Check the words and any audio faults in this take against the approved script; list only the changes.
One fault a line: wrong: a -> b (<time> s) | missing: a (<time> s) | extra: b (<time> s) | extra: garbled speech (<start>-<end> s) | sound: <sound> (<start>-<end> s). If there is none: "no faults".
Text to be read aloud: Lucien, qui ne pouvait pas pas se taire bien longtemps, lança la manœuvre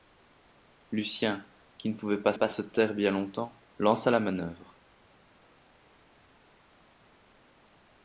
no faults